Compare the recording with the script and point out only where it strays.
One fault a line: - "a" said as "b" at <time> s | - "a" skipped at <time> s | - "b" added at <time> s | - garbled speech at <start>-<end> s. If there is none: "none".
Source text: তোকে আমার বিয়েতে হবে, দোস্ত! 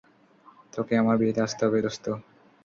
- "আসতে" added at 1.5 s